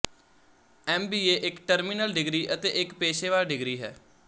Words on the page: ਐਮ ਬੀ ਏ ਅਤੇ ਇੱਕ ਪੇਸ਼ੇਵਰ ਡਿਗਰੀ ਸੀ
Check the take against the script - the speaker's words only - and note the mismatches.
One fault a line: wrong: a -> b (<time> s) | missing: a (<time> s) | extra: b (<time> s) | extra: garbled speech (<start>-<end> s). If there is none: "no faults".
extra: ਇੱਕ ਟਰਮੀਨਲ ਡਿਗਰੀ (1.5 s)
wrong: ਸੀ -> ਹੈ (3.8 s)